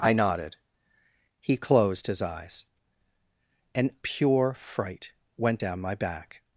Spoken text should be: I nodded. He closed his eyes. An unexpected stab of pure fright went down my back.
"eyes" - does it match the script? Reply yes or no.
yes